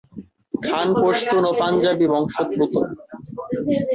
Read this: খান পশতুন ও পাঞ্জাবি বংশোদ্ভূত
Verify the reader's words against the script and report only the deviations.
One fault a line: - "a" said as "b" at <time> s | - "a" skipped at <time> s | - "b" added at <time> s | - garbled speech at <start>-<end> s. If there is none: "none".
none